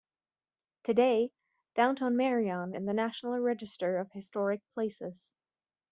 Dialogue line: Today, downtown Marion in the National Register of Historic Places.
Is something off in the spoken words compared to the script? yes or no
no